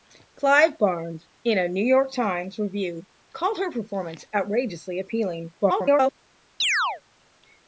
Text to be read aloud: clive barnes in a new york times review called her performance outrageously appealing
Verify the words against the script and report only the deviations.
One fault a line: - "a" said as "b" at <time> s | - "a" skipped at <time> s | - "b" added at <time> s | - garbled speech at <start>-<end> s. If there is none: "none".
- garbled speech at 5.6-6.1 s